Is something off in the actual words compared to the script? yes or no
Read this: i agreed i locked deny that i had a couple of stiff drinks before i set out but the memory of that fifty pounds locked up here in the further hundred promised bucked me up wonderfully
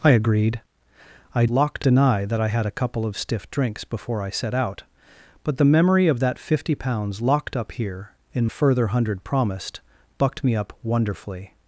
no